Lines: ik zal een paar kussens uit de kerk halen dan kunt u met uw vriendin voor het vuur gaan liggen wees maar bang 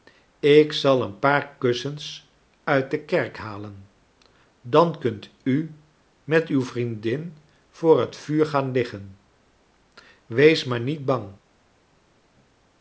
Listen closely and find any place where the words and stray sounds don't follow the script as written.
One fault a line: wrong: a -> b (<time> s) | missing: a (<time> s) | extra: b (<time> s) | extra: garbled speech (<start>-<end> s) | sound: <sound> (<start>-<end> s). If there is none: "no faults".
extra: niet (10.8 s)